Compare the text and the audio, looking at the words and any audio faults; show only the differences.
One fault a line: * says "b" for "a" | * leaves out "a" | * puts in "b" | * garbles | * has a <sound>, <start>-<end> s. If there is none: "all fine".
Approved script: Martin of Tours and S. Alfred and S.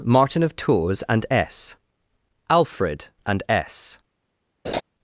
* has a laugh, 4.6-4.8 s